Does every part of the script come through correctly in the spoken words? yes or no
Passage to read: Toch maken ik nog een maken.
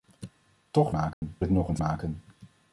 yes